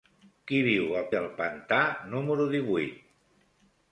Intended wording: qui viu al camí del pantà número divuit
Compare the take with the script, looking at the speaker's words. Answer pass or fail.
fail